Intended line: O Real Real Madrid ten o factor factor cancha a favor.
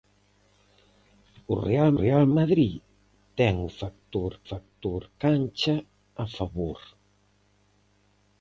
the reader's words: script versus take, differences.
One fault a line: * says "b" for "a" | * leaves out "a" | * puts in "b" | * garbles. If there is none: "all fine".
all fine